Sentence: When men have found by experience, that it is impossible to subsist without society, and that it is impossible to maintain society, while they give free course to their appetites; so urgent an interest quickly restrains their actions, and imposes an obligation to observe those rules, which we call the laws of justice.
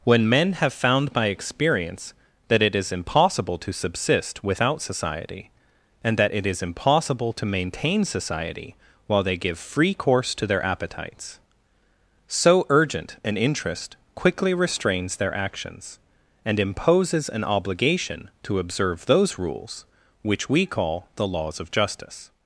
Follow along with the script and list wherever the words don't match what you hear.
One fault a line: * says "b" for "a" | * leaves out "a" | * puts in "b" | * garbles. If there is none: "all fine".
all fine